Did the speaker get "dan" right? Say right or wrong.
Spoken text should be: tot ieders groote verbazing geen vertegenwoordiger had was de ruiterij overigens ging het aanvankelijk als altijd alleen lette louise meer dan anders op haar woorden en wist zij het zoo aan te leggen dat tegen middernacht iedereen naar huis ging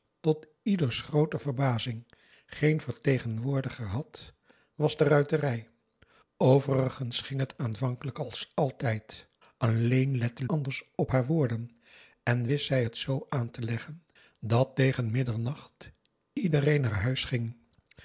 wrong